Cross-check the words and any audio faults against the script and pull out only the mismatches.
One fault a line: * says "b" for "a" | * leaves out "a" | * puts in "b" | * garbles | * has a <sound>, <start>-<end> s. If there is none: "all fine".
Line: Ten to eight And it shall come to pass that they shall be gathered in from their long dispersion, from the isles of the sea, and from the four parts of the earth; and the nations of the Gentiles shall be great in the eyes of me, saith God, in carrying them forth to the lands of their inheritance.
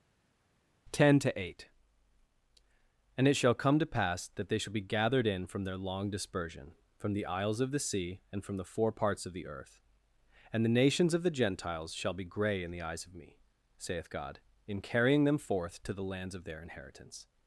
* says "grey" for "great"